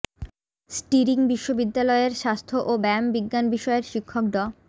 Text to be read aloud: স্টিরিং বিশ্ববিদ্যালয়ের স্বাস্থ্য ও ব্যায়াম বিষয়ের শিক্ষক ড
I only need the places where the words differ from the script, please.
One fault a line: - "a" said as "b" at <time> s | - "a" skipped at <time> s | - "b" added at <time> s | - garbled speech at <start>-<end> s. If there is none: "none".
- "বিজ্ঞান" added at 3.1 s